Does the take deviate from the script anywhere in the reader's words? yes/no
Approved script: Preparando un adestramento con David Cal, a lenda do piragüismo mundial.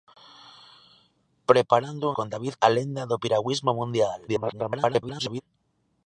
yes